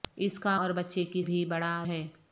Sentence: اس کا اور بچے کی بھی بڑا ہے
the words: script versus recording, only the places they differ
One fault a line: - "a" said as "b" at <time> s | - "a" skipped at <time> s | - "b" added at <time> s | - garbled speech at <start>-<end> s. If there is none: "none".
none